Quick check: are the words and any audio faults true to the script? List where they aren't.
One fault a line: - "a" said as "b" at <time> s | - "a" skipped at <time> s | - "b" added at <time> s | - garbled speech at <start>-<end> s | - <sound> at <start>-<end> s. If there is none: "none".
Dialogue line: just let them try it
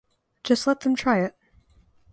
none